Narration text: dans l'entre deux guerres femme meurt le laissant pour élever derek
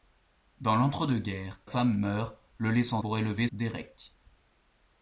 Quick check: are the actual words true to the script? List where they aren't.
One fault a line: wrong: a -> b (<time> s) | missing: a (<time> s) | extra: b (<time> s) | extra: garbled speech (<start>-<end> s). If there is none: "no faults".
no faults